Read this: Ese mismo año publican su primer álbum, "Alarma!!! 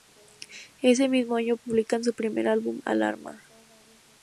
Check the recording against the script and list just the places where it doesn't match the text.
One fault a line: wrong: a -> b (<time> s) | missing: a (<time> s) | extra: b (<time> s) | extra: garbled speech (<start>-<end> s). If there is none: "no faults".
no faults